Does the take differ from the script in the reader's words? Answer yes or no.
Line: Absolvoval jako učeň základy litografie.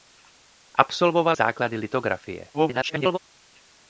yes